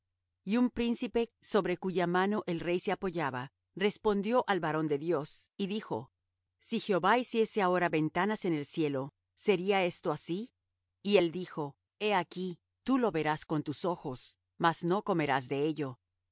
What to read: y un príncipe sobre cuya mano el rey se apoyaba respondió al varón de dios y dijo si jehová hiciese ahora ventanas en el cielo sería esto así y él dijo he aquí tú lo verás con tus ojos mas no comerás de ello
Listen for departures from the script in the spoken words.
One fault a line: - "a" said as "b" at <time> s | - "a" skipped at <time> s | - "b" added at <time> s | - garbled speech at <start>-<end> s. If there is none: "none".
none